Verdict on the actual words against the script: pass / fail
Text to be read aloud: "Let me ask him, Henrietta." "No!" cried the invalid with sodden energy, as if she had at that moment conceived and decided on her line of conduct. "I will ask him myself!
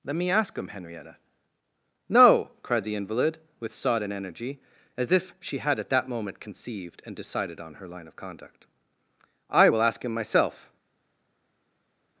pass